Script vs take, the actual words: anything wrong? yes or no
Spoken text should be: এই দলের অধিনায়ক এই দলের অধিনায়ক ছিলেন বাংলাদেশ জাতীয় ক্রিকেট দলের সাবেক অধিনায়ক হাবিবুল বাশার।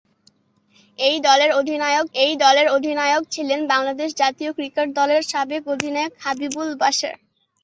no